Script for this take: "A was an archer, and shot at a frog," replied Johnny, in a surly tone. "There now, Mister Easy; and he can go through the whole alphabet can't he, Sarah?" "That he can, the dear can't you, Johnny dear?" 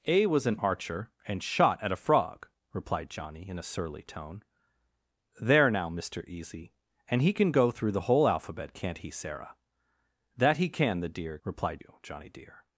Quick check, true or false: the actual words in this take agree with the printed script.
false